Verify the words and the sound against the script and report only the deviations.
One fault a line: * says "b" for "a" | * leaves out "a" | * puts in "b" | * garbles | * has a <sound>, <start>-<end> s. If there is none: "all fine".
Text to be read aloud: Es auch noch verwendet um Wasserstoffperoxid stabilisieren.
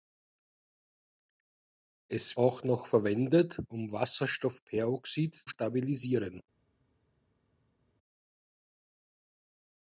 all fine